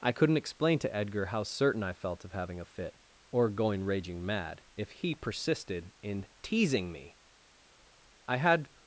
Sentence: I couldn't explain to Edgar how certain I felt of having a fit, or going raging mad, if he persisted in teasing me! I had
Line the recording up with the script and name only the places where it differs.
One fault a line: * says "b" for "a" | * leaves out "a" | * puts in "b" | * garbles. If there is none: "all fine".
all fine